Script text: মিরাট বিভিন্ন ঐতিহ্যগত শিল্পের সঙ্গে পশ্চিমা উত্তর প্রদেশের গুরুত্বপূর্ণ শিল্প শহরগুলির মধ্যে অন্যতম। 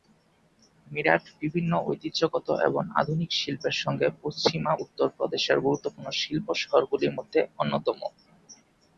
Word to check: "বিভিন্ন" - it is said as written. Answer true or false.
true